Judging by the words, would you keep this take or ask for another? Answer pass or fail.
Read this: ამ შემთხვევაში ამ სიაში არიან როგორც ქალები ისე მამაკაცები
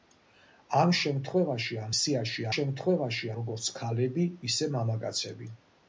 fail